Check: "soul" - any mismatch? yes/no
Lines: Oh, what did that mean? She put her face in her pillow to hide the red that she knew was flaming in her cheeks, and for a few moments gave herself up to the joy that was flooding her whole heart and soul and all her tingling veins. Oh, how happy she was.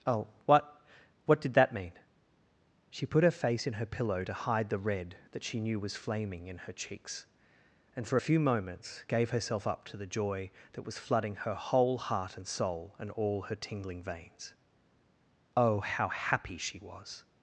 no